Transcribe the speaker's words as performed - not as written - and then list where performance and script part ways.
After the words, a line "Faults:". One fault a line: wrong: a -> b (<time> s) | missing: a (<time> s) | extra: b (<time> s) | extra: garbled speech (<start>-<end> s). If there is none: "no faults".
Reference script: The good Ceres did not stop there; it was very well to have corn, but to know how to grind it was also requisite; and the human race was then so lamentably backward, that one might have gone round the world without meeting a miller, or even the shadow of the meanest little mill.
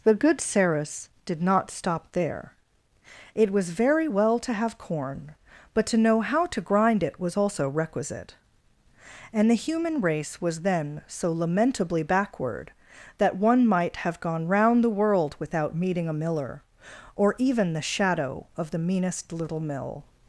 The good Ceres did not stop there; it was very well to have corn, but to know how to grind it was also requisite; and the human race was then so lamentably backward, that one might have gone round the world without meeting a miller, or even the shadow of the meanest little mill.
Faults:
no faults